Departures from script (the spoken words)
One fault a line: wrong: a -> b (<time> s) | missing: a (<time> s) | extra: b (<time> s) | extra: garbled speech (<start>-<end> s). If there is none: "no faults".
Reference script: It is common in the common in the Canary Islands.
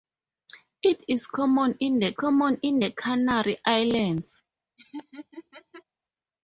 no faults